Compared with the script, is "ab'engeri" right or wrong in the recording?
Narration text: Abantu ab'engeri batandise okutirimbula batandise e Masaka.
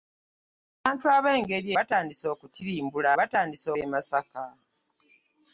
right